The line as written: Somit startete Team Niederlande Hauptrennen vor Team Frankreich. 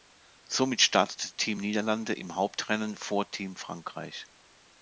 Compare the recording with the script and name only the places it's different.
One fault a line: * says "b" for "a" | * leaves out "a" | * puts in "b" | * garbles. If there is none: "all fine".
* puts in "im"